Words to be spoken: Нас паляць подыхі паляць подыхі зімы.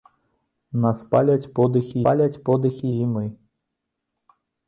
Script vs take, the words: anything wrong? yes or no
no